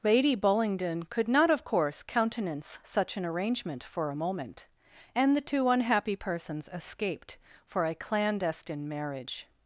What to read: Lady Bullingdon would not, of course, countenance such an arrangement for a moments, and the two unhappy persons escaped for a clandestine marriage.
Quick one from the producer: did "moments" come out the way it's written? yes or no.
no